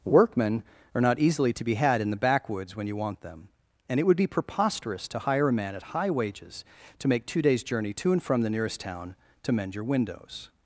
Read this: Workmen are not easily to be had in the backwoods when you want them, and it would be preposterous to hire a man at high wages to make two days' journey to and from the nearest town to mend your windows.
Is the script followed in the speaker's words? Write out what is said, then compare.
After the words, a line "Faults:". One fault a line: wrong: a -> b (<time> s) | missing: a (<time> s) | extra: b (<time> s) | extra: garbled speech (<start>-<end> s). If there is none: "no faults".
Workmen are not easily to be had in the backwoods when you want them, and it would be preposterous to hire a man at high wages to make two days' journey to and from the nearest town to mend your windows.
Faults:
no faults